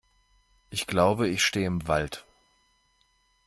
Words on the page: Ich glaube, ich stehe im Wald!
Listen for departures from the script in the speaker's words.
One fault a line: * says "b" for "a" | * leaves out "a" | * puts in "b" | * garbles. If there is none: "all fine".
all fine